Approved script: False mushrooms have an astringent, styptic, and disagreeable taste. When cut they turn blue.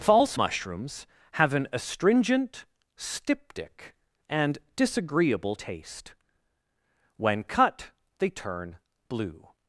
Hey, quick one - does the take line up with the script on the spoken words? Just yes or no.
yes